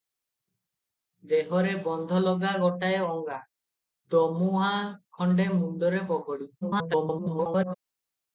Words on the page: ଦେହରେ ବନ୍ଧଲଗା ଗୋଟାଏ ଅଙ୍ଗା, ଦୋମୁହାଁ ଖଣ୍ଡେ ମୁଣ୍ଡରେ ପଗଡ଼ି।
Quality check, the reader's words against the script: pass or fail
fail